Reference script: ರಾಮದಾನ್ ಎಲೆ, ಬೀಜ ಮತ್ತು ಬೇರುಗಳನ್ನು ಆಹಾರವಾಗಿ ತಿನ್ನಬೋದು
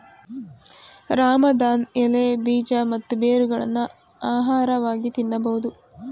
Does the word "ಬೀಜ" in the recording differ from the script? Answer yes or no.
no